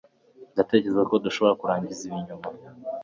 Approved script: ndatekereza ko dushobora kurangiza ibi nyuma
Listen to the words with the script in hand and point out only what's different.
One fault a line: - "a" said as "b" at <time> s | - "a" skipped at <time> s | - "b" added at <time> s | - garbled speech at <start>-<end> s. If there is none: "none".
none